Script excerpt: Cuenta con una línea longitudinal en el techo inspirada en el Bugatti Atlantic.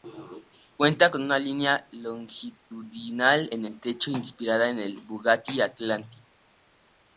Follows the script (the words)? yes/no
yes